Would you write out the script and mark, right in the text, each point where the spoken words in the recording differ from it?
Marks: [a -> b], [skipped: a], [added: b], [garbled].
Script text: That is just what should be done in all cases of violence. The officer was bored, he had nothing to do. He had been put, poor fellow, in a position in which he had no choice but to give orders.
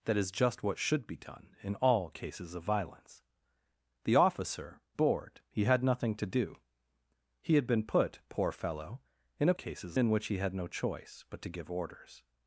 That is just what should be done in all cases of violence. The officer [skipped: was] bored, he had nothing to do. He had been put, poor fellow, in a [position -> cases] in which he had no choice but to give orders.